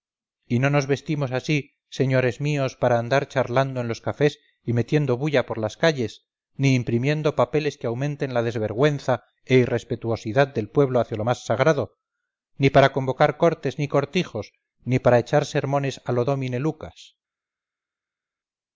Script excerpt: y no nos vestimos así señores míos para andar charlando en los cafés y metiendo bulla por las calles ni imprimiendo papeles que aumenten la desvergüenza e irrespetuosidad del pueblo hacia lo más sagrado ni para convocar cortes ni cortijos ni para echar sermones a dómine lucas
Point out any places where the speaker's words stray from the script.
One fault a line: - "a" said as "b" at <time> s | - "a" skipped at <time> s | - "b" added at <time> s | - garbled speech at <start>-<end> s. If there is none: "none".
- "lo" added at 16.1 s